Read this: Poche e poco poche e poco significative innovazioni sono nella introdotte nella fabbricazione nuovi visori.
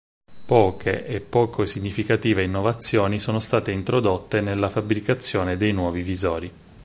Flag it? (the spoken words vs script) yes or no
yes